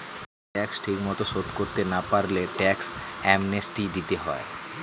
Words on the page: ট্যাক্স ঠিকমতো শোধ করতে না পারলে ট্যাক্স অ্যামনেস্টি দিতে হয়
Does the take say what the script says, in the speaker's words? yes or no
yes